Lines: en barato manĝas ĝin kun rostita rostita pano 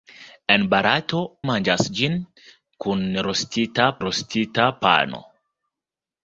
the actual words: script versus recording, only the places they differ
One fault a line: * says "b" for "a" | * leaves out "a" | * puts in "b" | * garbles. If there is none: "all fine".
all fine